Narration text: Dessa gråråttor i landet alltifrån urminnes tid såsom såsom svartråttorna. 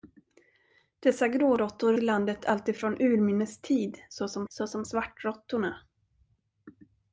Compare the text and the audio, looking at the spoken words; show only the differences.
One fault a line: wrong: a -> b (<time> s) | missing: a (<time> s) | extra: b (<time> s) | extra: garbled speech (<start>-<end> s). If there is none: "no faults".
no faults